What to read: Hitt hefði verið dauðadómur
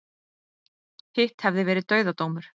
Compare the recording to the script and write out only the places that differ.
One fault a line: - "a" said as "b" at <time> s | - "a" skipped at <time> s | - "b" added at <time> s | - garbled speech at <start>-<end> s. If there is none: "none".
none